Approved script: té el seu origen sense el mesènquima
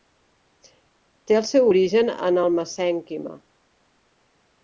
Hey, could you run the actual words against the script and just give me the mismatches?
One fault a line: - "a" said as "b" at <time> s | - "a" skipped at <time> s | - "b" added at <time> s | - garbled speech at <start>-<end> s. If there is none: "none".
- "sense" said as "en" at 2.3 s